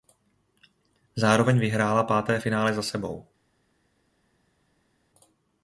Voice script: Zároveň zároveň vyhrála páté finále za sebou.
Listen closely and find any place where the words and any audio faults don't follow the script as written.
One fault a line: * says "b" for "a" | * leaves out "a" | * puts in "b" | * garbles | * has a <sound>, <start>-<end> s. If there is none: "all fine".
* leaves out "zároveň"